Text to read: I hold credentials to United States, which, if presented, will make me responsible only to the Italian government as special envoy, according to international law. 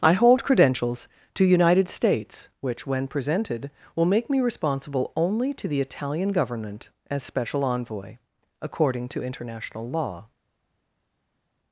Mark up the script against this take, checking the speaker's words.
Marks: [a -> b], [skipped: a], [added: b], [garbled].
I hold credentials to United States, which, [if -> when] presented, will make me responsible only to the Italian government as special envoy, according to international law.